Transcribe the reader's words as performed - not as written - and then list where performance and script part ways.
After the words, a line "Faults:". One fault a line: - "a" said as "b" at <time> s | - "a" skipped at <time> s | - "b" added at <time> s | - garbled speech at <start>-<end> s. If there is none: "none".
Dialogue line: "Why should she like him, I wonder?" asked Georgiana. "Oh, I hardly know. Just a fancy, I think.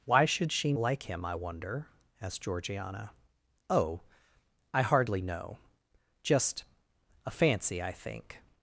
"Why should she like him, I wonder?" asked Georgiana. "Oh, I hardly know. Just a fancy, I think.
Faults:
none